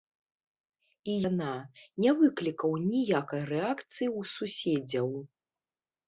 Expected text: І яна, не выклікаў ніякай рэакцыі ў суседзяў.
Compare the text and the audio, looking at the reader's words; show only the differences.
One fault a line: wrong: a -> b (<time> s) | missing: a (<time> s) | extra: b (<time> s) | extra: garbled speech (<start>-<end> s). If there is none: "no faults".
no faults